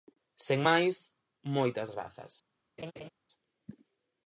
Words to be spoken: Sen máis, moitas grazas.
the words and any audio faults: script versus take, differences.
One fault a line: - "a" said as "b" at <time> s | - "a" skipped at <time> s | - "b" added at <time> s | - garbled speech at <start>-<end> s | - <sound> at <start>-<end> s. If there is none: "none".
- laugh at 2.8-3.1 s